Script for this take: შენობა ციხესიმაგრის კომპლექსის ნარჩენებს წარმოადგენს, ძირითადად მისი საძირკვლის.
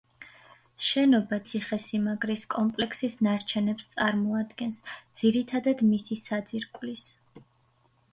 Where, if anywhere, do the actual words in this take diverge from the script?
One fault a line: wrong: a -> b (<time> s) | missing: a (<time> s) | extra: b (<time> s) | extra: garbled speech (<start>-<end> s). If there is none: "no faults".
no faults